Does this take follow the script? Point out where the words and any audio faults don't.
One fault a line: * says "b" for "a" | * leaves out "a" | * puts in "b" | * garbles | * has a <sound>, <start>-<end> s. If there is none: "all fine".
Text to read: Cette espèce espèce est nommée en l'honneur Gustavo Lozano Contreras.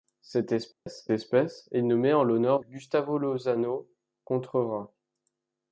* has a dropout, 0.7-0.9 s